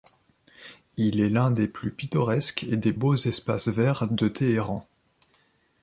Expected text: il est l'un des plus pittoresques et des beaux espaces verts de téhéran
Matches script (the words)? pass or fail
pass